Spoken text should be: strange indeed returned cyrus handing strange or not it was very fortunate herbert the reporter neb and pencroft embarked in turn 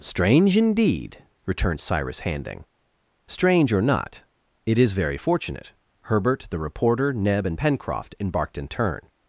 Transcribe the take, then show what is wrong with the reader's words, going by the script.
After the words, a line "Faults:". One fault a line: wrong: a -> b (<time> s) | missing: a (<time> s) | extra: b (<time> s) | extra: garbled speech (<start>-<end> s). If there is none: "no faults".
strange indeed returned cyrus handing strange or not it is very fortunate herbert the reporter neb and pencroft embarked in turn
Faults:
wrong: was -> is (4.8 s)